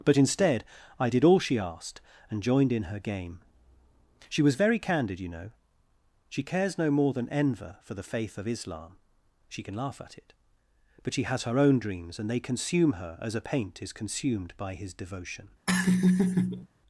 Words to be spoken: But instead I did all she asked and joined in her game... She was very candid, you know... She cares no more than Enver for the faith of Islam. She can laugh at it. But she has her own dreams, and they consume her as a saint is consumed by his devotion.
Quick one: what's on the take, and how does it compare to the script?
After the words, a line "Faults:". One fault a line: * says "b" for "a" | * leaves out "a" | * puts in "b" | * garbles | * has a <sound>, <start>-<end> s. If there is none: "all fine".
But instead I did all she asked and joined in her game... She was very candid, you know... She cares no more than Enver for the faith of Islam. She can laugh at it. But she has her own dreams, and they consume her as a paint is consumed by his devotion.
Faults:
* says "paint" for "saint"
* has a laugh, 15.7-16.7 s